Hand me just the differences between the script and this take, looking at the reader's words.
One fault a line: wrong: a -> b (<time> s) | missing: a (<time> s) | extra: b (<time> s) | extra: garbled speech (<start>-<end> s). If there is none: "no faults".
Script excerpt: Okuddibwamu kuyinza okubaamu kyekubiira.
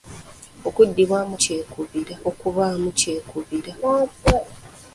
wrong: kuyinza -> kyekubiira (1.4 s)